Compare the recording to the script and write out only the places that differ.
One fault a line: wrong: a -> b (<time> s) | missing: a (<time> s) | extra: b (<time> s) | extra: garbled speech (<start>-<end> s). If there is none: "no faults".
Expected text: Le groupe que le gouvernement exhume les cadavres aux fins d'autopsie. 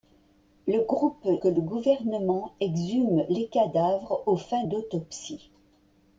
no faults